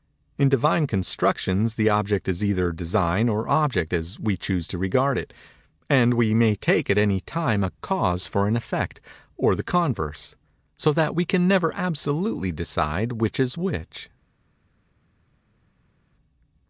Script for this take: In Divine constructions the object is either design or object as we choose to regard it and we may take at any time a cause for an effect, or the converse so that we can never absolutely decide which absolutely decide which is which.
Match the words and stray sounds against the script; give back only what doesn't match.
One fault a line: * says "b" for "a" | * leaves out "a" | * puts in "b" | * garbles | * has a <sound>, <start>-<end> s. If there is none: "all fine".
* leaves out "absolutely decide which"